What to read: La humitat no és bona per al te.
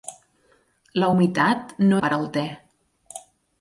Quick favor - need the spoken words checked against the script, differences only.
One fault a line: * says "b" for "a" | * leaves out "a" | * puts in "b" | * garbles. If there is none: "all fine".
* leaves out "és bona"